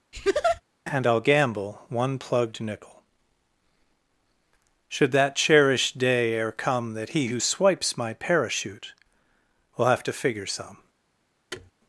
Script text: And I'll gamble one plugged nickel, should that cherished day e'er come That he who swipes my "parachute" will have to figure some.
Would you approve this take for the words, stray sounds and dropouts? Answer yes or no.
no